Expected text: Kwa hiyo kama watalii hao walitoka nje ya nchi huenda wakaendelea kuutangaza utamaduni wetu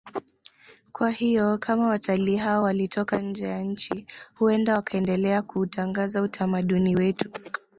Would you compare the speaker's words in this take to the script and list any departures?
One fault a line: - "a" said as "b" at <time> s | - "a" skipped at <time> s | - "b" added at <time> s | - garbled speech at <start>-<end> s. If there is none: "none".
none